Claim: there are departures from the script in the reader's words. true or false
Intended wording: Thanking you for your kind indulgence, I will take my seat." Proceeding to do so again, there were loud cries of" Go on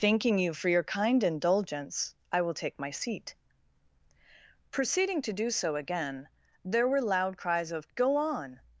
false